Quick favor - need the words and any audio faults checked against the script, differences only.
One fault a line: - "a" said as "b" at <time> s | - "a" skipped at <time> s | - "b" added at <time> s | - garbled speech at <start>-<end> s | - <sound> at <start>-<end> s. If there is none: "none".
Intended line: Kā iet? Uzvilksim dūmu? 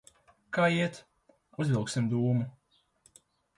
none